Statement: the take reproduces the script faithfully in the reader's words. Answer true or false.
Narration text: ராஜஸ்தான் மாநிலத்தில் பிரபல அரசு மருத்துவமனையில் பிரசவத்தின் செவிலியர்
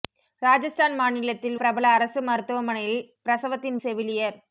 true